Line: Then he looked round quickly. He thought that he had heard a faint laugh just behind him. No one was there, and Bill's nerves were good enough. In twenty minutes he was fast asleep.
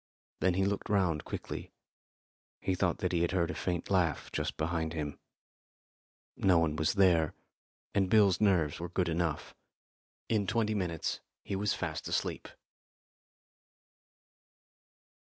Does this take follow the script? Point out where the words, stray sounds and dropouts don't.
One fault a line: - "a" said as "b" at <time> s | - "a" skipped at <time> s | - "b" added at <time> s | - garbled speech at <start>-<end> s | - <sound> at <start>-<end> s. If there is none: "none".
none